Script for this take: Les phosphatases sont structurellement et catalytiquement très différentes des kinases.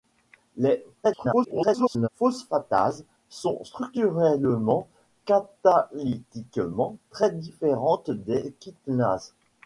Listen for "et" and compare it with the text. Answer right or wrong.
wrong